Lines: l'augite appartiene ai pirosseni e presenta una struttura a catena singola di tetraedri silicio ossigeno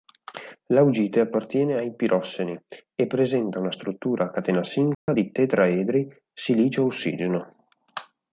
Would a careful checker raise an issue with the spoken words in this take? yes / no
no